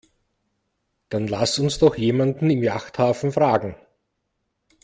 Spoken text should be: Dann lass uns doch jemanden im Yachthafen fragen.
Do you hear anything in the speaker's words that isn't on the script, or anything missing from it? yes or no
no